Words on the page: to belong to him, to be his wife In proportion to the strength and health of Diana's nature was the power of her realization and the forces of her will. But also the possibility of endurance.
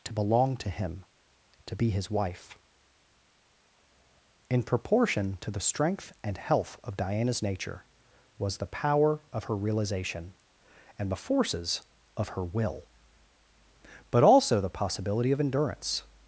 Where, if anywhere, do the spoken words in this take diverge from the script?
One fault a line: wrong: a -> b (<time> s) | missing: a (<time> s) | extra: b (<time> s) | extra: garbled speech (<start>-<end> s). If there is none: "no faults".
no faults